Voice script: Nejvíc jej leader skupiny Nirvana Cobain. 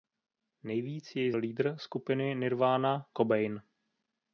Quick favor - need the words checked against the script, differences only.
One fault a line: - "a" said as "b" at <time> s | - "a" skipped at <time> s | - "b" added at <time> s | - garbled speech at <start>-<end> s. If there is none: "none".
none